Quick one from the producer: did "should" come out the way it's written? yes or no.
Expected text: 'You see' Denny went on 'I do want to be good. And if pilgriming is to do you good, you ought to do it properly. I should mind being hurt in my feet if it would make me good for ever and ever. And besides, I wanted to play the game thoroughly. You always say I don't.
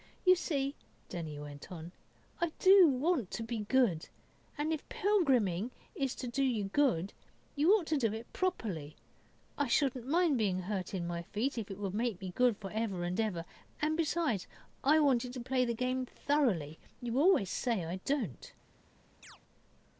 no